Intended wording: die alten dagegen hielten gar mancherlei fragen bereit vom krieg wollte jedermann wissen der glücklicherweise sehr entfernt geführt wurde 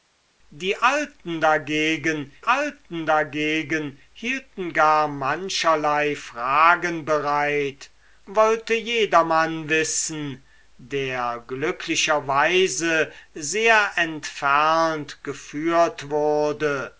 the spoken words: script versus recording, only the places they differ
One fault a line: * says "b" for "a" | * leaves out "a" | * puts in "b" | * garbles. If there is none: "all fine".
* puts in "alten dagegen"
* leaves out "vom krieg"